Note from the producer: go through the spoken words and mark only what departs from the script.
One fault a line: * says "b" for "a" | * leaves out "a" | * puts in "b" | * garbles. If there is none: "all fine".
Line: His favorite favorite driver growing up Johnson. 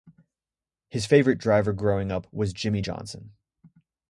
* leaves out "favorite"
* puts in "was Jimmie"